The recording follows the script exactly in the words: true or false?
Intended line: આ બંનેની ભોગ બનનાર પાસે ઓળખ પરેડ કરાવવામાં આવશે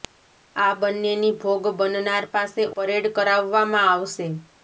false